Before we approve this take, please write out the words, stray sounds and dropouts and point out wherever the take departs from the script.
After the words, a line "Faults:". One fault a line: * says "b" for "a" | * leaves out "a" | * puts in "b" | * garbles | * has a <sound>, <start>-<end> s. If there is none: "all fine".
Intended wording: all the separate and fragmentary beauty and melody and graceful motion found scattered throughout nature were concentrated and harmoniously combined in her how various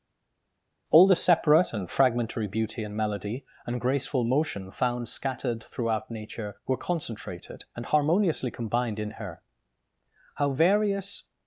all the separate and fragmentary beauty and melody and graceful motion found scattered throughout nature were concentrated and harmoniously combined in her how various
Faults:
all fine